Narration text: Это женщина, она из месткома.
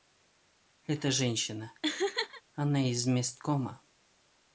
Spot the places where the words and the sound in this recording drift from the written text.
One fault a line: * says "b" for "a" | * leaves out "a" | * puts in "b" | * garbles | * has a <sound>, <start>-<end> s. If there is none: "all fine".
* has a laugh, 1.8-2.4 s